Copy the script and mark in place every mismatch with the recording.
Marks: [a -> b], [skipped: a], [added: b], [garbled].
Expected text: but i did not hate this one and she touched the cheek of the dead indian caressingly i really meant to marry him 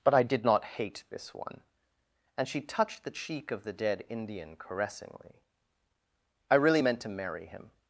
but i did not hate this one and she touched the cheek of the dead indian caressingly i really meant to marry him